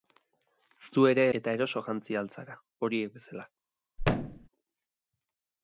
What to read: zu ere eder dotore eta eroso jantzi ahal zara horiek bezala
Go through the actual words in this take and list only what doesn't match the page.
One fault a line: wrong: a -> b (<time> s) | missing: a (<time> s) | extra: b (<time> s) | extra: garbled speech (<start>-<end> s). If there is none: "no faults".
missing: eder dotore (1.2 s)